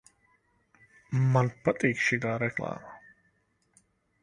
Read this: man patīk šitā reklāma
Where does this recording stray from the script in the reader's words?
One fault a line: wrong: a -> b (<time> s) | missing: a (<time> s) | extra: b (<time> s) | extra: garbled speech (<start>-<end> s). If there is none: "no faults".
no faults